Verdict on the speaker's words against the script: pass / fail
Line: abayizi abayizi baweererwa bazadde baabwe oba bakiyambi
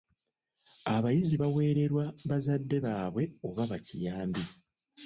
fail